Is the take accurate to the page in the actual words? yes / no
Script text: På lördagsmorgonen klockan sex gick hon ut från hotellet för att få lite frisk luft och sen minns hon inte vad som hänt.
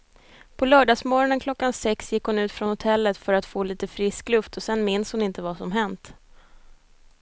yes